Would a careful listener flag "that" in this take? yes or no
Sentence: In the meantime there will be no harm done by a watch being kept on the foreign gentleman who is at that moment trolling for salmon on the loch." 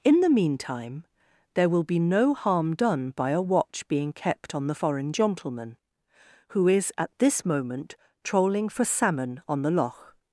yes